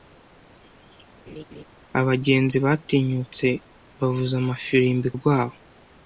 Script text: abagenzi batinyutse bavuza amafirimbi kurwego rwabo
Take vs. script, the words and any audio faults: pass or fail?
fail